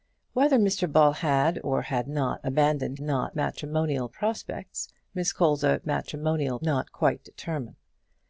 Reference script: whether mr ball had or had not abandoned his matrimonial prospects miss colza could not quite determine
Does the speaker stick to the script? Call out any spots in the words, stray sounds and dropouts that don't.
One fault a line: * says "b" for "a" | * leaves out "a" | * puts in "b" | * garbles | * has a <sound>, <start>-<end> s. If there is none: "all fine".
* says "not" for "his"
* says "matrimonial" for "could"